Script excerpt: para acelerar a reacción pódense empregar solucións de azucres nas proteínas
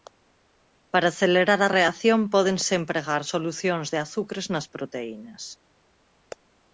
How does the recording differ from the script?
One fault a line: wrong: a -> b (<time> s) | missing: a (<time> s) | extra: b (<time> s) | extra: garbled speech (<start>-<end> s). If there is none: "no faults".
no faults